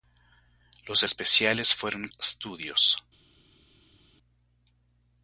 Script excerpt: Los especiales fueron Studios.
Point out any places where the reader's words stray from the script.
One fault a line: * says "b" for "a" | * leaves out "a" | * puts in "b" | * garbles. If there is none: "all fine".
all fine